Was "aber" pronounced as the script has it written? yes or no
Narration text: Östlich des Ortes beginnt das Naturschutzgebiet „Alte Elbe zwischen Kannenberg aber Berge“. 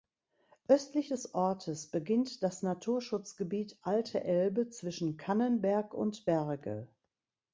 no